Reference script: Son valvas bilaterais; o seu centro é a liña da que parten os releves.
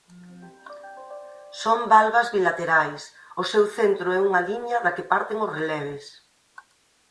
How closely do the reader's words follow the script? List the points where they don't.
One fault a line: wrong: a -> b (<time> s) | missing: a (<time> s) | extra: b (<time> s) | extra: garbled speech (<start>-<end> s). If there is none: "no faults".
wrong: a -> unha (4.3 s)